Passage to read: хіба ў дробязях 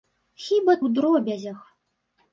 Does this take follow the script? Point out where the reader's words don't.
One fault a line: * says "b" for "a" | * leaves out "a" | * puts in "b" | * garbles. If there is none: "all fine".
all fine